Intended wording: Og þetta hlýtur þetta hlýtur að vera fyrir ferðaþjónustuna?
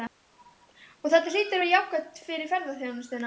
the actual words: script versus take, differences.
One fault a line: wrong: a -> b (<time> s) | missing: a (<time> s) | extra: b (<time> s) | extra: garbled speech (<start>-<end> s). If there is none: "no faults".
missing: þetta hlýtur (1.6 s)
extra: jákvætt (1.7 s)